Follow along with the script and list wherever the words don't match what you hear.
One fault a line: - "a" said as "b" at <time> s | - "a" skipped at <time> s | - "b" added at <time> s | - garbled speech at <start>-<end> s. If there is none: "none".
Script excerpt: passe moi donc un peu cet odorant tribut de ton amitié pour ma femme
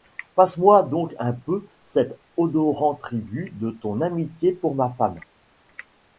none